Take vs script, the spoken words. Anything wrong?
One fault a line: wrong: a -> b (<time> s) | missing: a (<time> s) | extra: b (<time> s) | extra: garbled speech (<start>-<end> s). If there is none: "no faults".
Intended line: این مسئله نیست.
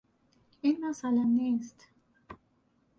no faults